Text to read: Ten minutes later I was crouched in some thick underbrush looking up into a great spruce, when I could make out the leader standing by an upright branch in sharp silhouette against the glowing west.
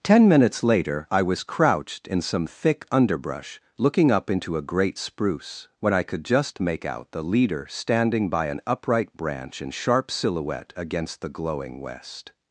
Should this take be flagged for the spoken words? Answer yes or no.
yes